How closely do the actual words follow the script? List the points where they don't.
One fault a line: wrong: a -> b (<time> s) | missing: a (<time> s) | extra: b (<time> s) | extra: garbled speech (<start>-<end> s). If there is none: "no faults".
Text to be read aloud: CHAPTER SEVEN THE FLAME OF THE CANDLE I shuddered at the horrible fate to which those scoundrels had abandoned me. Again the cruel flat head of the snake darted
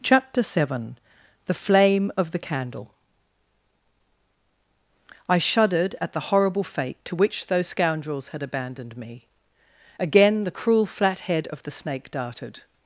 no faults